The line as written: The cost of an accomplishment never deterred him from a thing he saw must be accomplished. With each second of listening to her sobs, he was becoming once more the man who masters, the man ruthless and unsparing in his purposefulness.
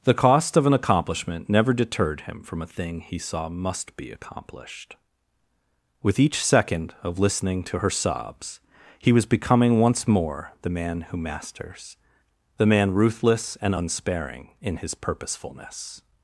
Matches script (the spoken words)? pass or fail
pass